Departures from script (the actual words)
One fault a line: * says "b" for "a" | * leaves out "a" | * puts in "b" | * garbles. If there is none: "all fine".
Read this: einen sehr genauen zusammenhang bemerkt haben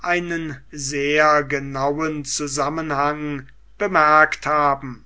all fine